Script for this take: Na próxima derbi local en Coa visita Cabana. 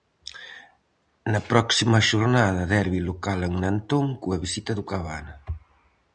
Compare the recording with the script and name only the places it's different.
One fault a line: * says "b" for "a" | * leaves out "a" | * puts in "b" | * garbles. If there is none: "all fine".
* puts in "xornada"
* puts in "Nantón"
* puts in "do"